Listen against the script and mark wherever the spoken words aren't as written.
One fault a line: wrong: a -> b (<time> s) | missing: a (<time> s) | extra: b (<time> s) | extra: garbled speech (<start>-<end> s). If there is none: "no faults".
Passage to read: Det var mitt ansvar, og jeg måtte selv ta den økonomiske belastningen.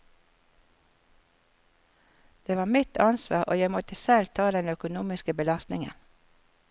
no faults